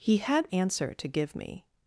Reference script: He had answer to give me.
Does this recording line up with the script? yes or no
yes